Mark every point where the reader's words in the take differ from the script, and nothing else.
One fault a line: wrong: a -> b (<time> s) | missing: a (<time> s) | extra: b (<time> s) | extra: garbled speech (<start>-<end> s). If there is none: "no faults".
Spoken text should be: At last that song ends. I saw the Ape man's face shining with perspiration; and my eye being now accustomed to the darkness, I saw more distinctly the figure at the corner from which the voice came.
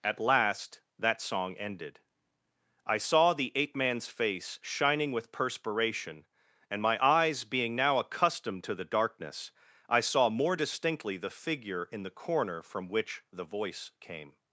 wrong: ends -> ended (1.6 s)
wrong: eye -> eyes (7.0 s)
wrong: at -> in (11.9 s)